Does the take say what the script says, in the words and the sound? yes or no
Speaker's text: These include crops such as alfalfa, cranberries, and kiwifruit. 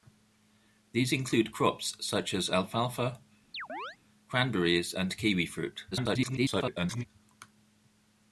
no